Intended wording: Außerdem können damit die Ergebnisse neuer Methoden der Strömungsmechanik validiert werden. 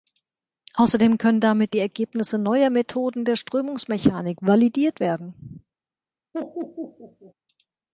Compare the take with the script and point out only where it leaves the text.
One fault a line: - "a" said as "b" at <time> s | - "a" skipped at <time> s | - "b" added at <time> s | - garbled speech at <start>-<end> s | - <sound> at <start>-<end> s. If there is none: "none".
- laugh at 6.3-7.3 s